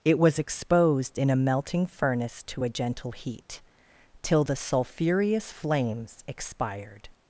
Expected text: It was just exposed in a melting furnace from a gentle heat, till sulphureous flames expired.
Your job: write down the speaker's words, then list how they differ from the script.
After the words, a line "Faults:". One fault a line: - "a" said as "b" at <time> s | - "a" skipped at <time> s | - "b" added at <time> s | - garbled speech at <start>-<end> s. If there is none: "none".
It was exposed in a melting furnace to a gentle heat, till the sulphureous flames expired.
Faults:
- "just" skipped at 0.4 s
- "from" said as "to" at 2.5 s
- "the" added at 4.4 s